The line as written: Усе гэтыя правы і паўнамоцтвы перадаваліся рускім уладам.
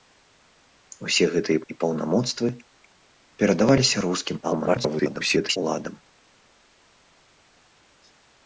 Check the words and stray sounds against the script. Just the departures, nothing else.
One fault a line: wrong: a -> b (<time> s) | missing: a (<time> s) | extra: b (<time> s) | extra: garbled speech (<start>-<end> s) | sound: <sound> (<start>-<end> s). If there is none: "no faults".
missing: правы (1.6 s)
extra: garbled speech (4.4-5.6 s)